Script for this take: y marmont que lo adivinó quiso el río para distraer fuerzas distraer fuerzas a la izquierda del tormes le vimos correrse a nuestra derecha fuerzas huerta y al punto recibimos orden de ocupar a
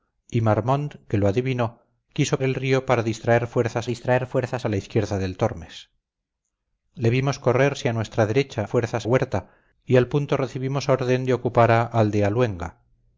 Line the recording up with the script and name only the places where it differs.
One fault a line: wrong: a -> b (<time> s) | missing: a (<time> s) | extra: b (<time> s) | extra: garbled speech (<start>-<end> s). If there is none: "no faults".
no faults